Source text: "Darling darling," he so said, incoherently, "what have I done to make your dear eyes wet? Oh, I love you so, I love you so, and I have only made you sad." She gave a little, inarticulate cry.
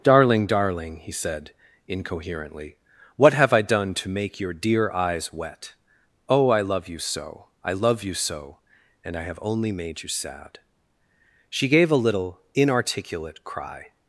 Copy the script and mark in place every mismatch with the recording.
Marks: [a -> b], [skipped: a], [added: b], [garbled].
"Darling darling," he [skipped: so] said, incoherently, "what have I done to make your dear eyes wet? Oh, I love you so, I love you so, and I have only made you sad." She gave a little, inarticulate cry.